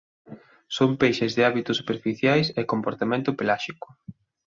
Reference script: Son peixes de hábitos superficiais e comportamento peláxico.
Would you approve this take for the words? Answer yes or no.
yes